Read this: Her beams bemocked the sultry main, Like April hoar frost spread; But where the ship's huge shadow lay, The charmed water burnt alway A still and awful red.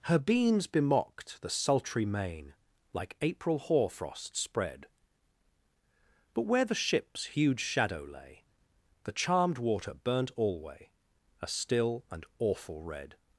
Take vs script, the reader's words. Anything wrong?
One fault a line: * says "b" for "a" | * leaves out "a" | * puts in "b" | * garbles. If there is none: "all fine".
all fine